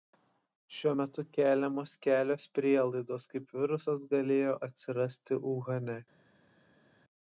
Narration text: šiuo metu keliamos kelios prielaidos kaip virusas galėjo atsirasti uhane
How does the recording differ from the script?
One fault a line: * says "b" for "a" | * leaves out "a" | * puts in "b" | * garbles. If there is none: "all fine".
all fine